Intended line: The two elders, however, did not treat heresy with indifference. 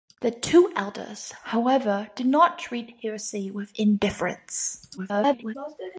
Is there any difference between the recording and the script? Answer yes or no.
yes